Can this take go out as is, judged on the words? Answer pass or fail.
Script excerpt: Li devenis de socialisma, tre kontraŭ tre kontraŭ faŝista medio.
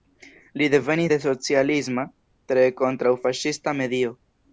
fail